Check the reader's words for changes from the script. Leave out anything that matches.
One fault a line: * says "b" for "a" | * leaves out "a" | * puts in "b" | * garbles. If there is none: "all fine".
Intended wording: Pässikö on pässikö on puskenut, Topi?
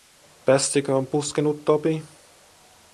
* leaves out "pässikö on"